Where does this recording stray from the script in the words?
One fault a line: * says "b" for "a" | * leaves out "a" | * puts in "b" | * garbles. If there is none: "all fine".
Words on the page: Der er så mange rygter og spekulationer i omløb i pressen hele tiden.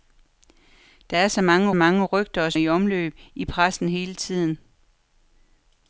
* puts in "mange"
* leaves out "spekulationer"